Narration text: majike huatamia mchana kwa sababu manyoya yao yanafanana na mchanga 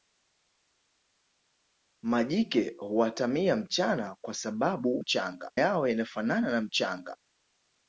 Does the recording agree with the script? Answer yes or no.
no